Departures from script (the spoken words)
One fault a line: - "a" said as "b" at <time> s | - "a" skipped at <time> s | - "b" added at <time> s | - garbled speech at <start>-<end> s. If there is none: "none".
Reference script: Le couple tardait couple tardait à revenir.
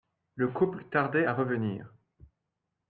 - "couple tardait" skipped at 1.3 s